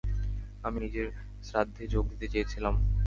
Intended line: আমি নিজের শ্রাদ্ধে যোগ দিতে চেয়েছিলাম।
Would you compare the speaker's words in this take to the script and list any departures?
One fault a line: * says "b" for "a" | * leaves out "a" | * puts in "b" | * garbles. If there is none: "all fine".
all fine